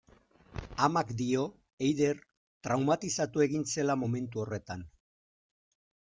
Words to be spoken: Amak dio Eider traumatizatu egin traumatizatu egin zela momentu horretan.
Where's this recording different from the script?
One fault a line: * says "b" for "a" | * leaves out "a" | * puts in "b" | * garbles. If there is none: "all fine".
* leaves out "traumatizatu egin"